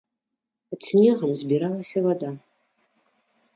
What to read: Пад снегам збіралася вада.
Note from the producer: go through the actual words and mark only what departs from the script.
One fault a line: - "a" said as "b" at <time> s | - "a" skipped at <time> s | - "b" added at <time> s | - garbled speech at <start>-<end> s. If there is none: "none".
none